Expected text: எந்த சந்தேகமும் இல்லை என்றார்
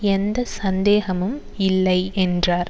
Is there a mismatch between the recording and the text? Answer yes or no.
no